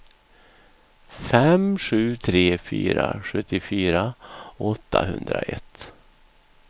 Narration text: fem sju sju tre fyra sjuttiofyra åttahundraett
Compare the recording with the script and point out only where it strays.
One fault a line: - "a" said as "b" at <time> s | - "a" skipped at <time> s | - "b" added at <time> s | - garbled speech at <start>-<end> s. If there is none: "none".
- "sju" skipped at 2.2 s